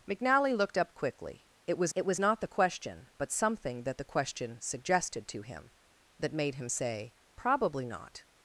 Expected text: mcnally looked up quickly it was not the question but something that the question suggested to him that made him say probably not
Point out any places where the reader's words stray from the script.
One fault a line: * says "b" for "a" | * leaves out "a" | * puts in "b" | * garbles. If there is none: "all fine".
* puts in "it was"